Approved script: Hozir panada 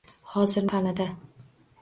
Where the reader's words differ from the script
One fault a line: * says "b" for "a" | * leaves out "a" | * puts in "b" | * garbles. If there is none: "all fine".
all fine